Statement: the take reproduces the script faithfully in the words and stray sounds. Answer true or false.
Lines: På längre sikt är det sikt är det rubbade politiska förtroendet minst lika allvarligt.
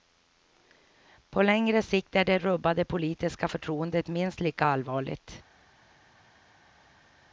false